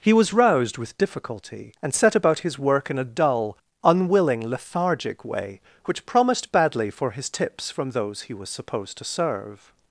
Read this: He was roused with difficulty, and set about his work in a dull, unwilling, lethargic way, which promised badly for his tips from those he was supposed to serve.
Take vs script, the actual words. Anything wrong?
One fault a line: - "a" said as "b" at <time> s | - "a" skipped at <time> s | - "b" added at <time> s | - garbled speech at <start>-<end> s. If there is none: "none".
none